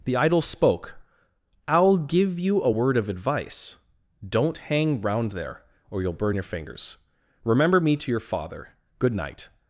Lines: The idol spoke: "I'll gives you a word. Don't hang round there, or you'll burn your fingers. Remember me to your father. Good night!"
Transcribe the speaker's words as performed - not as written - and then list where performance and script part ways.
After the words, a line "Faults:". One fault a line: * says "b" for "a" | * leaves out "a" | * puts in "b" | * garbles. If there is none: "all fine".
The idol spoke: "I'll give you a word of advice. Don't hang round there, or you'll burn your fingers. Remember me to your father. Good night!"
Faults:
* says "give" for "gives"
* puts in "of advice"